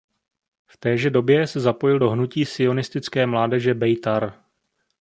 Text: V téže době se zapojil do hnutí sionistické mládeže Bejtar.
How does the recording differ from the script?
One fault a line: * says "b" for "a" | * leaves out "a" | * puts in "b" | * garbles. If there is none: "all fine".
all fine